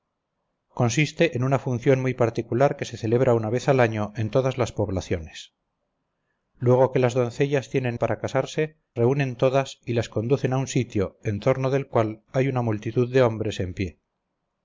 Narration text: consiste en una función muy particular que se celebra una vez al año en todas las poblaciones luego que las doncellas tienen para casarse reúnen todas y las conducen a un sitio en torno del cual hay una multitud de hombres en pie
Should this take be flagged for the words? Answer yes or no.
no